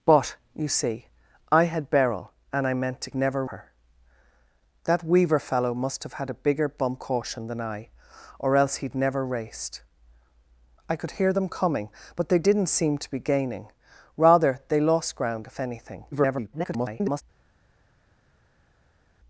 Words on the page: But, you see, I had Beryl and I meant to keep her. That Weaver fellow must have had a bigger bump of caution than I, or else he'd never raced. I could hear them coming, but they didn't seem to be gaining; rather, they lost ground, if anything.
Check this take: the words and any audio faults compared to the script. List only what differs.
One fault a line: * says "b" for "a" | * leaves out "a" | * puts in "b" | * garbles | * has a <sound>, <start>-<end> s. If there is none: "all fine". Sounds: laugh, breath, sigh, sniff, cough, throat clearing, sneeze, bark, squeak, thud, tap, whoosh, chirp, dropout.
* says "never" for "keep"
* leaves out "of"
* garbles